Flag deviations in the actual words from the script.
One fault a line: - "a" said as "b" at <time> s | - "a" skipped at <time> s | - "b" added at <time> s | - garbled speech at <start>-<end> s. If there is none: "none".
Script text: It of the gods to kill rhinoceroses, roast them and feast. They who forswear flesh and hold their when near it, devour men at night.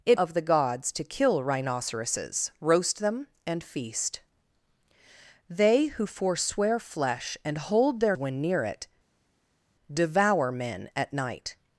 none